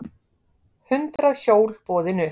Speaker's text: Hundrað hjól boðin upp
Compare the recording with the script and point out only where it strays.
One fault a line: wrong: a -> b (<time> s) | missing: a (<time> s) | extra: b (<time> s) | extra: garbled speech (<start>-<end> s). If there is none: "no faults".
no faults